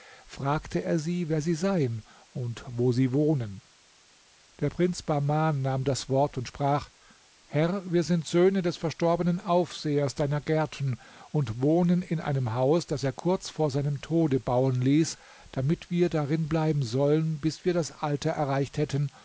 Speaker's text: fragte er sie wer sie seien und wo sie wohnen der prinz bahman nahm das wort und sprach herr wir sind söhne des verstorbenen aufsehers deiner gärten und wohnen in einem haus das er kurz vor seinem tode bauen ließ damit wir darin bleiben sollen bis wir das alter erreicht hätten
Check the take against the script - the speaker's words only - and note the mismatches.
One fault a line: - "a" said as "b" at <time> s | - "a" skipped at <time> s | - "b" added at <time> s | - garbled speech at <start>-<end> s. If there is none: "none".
none